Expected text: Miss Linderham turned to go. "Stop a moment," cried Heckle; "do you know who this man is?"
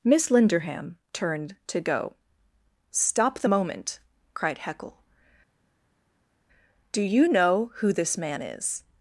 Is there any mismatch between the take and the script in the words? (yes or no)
yes